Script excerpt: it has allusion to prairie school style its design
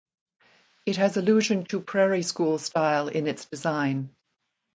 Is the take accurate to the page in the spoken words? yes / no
no